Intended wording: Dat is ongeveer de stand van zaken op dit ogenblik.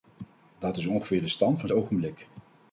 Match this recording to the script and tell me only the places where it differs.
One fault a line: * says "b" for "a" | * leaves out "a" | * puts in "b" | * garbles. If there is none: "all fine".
* leaves out "zaken op dit"